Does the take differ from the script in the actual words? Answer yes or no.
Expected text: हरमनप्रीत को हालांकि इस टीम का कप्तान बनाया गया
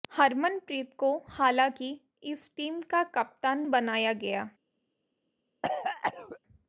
no